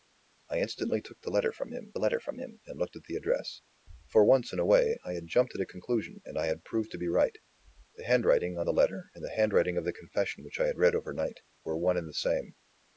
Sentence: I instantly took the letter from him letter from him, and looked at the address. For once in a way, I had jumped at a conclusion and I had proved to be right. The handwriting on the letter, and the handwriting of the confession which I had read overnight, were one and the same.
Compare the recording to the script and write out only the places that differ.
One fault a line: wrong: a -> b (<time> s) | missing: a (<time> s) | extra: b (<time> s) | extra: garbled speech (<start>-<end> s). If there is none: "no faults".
no faults